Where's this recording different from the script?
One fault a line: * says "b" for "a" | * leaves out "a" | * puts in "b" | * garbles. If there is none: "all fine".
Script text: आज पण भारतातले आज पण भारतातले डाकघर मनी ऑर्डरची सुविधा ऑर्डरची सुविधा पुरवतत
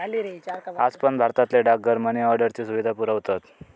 * leaves out "आज पण भारतातले"
* leaves out "ऑर्डरची सुविधा"